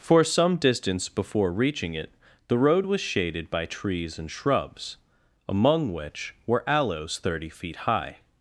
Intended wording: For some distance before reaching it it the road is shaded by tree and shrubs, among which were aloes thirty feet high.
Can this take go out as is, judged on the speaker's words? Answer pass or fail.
fail